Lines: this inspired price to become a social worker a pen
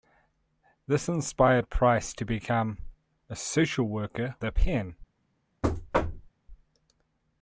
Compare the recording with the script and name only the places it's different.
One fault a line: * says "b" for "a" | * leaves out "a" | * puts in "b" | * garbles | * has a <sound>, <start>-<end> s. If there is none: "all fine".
* has a thud, 5.6-6.3 s